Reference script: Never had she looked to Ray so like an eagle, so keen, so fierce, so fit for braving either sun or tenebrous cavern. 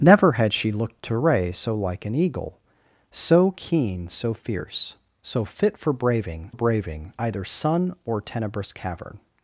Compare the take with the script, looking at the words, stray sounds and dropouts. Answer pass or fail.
fail